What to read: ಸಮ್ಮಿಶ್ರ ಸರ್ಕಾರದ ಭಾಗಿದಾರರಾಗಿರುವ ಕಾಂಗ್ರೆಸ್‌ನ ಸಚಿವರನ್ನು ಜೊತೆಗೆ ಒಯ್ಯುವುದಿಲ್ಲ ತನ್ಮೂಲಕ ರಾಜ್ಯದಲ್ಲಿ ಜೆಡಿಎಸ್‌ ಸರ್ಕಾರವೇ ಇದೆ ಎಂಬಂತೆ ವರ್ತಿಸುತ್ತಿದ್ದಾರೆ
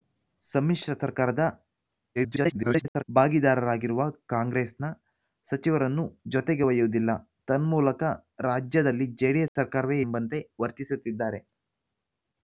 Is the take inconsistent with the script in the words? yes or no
yes